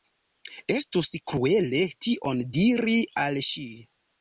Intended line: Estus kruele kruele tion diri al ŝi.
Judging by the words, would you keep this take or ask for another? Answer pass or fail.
fail